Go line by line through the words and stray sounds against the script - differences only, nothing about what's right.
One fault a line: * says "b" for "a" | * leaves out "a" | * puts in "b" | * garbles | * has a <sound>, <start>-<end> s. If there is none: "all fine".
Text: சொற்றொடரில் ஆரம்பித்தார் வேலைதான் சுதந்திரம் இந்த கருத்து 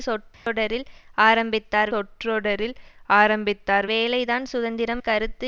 * has a dropout, 0.3-0.5 s
* puts in "சொற்றொடரில் ஆரம்பித்தார்"
* leaves out "இந்த"